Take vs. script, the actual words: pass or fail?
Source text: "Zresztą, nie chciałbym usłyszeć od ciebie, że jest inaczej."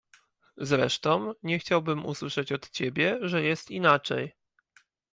pass